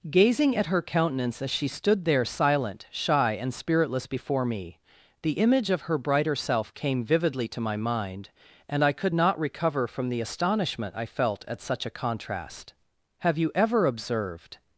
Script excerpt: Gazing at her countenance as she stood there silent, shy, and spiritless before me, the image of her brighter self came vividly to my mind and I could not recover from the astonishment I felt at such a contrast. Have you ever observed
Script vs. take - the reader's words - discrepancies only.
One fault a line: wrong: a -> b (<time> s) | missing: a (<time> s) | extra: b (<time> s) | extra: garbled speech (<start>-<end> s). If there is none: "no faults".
no faults